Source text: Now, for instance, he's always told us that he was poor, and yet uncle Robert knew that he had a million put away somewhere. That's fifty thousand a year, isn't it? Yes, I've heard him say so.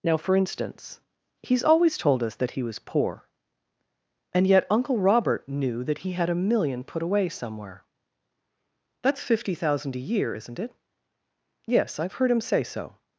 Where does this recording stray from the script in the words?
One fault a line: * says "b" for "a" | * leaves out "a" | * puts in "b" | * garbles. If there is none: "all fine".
all fine